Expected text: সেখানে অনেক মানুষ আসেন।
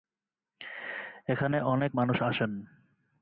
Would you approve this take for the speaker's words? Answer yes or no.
no